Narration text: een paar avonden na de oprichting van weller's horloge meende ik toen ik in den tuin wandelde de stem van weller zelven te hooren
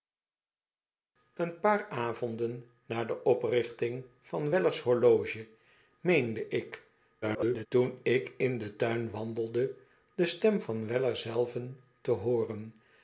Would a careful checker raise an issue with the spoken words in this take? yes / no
yes